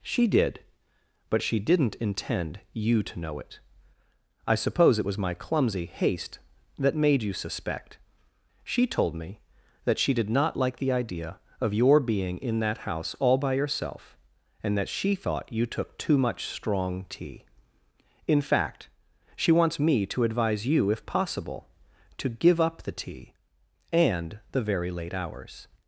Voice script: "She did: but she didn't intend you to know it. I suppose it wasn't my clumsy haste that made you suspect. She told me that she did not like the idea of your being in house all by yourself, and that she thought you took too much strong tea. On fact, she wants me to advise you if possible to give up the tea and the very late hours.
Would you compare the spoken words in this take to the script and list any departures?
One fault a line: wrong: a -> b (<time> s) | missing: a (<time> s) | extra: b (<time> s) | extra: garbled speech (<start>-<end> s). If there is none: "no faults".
wrong: wasn't -> was (5.0 s)
extra: that (12.6 s)
wrong: On -> In (18.3 s)